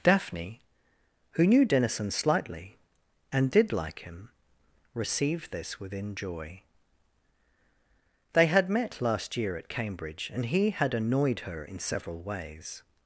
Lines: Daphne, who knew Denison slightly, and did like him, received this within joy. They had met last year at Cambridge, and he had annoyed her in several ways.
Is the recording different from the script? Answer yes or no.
no